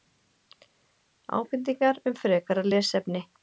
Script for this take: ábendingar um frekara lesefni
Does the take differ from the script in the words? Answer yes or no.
no